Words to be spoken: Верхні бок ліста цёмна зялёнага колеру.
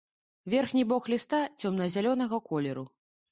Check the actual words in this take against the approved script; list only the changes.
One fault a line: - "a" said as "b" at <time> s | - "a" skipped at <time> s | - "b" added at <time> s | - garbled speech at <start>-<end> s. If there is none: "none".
none